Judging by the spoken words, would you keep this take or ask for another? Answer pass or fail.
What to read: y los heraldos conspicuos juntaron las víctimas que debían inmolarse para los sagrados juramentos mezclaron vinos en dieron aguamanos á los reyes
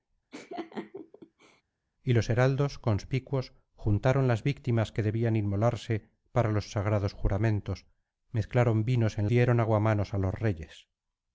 pass